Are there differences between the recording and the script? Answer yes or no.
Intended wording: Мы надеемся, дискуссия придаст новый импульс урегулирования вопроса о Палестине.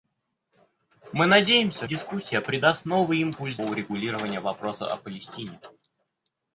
no